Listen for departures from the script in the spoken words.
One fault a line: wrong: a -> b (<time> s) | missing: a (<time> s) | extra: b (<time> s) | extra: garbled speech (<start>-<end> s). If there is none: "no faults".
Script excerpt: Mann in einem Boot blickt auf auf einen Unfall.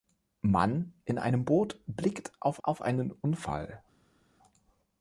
no faults